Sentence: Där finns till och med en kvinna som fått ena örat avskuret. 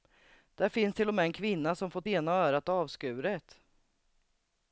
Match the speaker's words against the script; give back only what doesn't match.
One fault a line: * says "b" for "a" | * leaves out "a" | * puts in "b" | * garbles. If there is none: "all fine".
all fine